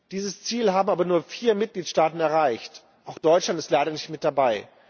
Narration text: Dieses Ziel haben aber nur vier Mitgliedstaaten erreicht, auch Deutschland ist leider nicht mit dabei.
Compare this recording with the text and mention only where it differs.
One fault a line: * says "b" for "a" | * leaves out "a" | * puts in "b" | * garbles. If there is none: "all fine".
all fine